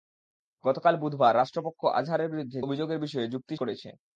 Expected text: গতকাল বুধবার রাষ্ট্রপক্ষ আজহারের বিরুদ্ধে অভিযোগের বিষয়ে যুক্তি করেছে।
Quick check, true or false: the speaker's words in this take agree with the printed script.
true